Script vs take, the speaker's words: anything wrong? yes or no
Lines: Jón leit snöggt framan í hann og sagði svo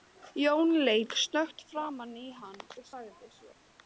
no